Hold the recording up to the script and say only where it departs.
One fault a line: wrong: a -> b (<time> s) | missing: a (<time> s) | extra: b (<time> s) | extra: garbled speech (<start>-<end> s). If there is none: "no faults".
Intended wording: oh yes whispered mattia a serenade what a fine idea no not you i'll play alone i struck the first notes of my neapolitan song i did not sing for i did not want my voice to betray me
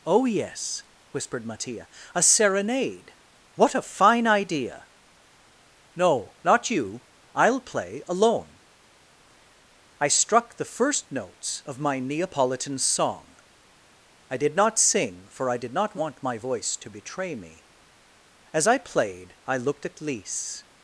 extra: as i played i looked at lise (18.5 s)